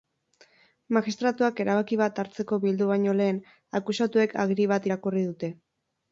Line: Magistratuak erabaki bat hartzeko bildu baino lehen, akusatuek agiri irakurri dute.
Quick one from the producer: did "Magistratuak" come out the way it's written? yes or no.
yes